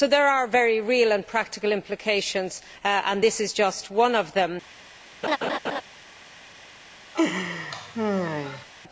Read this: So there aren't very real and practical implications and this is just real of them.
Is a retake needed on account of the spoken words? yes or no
yes